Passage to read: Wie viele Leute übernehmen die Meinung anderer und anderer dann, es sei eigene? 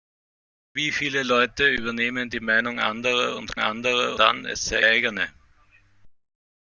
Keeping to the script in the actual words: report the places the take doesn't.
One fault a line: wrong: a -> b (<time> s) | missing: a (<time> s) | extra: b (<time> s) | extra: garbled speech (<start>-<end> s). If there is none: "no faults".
no faults